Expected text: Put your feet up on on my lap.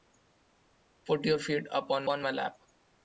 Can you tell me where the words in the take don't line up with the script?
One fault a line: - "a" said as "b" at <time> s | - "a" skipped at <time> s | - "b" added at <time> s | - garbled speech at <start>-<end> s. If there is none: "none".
none